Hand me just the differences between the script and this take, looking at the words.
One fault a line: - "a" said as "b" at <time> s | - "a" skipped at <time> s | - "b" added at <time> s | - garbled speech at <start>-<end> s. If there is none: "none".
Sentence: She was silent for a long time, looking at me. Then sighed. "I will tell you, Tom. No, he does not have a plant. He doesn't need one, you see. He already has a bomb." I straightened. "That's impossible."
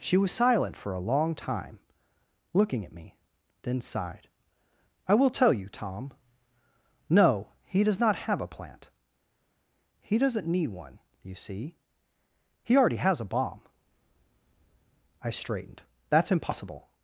none